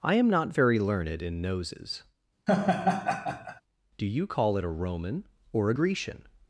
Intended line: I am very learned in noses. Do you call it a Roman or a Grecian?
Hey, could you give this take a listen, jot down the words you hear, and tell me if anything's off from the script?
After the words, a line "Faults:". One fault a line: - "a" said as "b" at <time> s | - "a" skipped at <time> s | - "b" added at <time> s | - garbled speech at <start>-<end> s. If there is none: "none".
I am not very learned in noses. Do you call it a Roman or a Grecian?
Faults:
- "not" added at 0.3 s